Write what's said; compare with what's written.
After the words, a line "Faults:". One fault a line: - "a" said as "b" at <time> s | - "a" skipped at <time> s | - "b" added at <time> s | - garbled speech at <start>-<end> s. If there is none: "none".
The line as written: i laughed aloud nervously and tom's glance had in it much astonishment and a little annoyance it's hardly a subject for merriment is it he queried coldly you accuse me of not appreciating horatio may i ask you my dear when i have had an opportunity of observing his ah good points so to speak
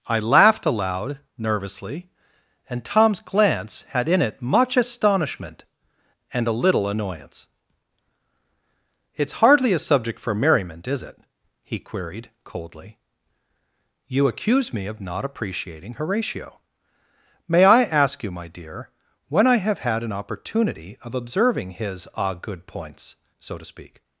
i laughed aloud nervously and tom's glance had in it much astonishment and a little annoyance it's hardly a subject for merriment is it he queried coldly you accuse me of not appreciating horatio may i ask you my dear when i have had an opportunity of observing his ah good points so to speak
Faults:
none